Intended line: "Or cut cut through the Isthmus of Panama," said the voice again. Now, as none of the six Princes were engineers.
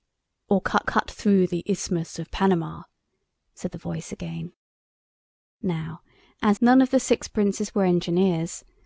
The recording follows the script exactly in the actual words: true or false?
true